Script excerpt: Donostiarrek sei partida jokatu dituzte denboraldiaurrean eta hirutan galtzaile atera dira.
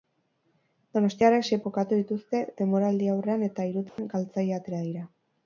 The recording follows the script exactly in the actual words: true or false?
false